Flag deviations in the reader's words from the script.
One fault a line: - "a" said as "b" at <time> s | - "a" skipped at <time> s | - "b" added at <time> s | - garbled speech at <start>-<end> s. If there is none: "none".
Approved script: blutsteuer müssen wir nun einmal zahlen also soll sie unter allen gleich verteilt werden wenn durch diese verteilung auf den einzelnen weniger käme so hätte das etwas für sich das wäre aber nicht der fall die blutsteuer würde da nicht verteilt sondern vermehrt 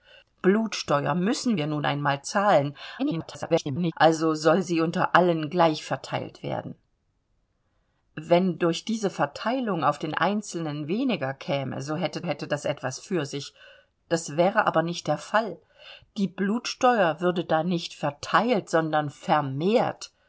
- garbled speech at 3.0-3.9 s
- "hätte" added at 12.2 s